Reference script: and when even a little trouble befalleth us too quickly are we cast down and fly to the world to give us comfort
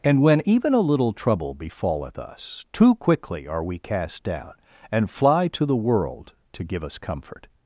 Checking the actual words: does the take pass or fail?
pass